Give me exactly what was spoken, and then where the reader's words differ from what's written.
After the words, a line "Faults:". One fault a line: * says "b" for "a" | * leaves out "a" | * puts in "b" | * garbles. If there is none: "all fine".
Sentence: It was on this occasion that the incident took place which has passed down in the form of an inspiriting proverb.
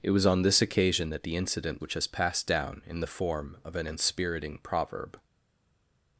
It was on this occasion that the incident which has passed down in the form of an inspiriting proverb.
Faults:
* leaves out "took place"